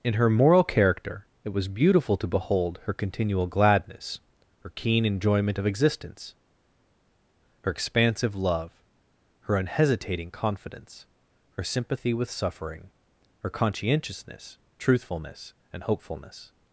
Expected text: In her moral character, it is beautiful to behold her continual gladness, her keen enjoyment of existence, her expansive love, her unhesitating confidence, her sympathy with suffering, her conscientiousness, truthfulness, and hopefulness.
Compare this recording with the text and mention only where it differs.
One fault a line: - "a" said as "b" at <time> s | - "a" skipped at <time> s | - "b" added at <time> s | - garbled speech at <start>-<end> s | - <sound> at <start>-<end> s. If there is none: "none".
- "is" said as "was" at 1.5 s